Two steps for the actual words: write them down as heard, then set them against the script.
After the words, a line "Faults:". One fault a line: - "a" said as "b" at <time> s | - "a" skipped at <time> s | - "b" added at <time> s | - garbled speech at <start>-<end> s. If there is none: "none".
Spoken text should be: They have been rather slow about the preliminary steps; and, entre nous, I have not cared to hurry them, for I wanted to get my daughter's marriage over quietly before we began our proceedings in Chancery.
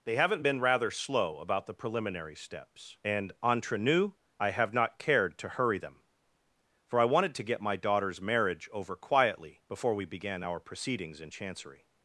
They haven't been rather slow about the preliminary steps; and, entre nous, I have not cared to hurry them, for I wanted to get my daughter's marriage over quietly before we began our proceedings in Chancery.
Faults:
- "have" said as "haven't" at 0.1 s